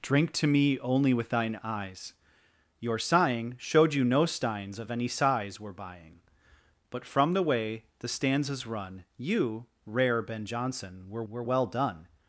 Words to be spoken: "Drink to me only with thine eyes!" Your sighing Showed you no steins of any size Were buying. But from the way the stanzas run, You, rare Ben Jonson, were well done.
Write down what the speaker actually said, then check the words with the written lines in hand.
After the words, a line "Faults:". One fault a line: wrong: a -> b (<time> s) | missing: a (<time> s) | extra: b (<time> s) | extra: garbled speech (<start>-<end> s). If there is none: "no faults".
"Drink to me only with thine eyes!" Your sighing Showed you no steins of any size Were buying. But from the way the stanzas run, You, rare Ben Jonson, were were well done.
Faults:
extra: were (11.3 s)